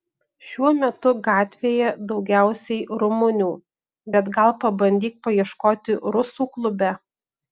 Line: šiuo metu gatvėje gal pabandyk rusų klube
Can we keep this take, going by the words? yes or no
no